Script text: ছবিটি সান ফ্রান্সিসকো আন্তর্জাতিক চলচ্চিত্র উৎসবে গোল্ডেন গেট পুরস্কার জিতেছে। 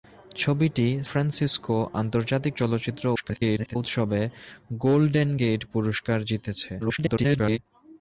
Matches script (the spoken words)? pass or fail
fail